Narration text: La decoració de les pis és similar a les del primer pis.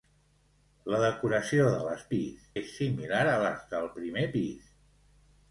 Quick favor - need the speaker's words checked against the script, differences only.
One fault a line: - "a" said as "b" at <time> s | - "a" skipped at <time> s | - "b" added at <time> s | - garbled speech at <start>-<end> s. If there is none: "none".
none